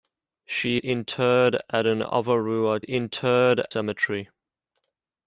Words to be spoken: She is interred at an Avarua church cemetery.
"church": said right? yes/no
no